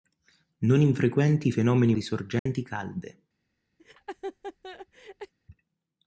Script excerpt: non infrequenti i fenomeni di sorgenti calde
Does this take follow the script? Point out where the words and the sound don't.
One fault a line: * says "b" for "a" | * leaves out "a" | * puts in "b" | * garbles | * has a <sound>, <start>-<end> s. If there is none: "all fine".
* has a dropout, 2.4-2.5 s
* has a laugh, 3.8-5.3 s